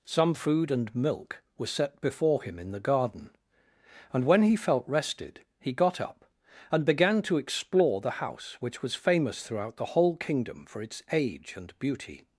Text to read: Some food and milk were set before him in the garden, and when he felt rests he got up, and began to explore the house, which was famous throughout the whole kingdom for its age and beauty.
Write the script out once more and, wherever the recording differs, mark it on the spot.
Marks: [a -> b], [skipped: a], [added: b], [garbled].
Some food and milk were set before him in the garden, and when he felt [rests -> rested] he got up, and began to explore the house, which was famous throughout the whole kingdom for its age and beauty.